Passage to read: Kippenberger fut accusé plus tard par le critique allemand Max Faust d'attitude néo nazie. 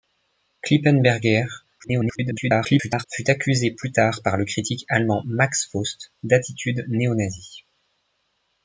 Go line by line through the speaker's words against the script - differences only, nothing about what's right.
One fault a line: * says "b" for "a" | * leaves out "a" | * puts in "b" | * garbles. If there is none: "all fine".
* garbles